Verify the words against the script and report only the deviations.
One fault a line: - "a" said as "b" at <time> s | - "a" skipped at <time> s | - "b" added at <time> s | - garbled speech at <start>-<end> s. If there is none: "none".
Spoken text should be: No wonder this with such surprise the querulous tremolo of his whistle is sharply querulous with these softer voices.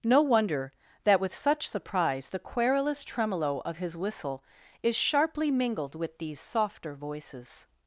- "this" said as "that" at 1.0 s
- "querulous" said as "mingled" at 5.5 s